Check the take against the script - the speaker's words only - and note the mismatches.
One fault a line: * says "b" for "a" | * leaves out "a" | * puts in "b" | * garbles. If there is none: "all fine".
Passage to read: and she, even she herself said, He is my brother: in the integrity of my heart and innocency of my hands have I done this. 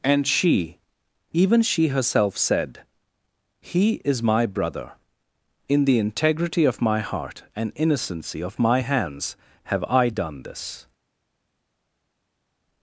all fine